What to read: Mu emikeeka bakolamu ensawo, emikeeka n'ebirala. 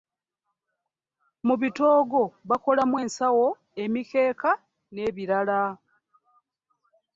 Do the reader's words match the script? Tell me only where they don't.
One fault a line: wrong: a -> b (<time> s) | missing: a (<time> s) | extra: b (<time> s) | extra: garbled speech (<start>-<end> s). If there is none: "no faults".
wrong: emikeeka -> bitoogo (1.6 s)